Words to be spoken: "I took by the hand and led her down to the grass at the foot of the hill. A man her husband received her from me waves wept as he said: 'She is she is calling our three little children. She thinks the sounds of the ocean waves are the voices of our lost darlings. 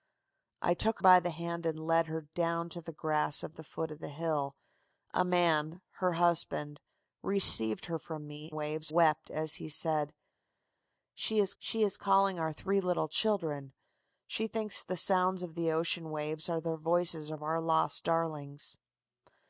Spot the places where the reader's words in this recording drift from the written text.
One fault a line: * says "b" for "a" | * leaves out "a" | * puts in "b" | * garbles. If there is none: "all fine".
all fine